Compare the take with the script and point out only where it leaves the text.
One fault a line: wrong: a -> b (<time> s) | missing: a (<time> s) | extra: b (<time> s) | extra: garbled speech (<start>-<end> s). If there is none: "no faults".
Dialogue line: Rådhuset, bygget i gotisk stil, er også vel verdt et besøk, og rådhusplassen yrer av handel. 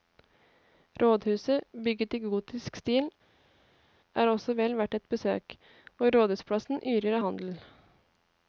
no faults